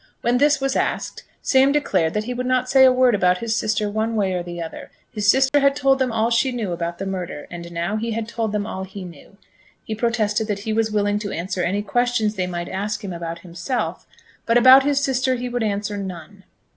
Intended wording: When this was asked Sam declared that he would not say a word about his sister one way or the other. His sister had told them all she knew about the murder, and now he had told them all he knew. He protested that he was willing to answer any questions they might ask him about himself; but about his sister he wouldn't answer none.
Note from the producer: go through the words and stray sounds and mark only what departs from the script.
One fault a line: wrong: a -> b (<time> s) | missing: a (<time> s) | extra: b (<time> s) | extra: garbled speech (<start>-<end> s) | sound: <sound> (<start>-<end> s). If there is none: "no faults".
sound: dropout (5.5-5.5 s)
wrong: wouldn't -> would (15.5 s)